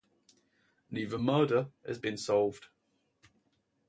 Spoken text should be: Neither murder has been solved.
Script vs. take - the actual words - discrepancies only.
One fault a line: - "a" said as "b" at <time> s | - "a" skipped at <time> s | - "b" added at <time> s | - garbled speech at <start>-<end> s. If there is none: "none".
none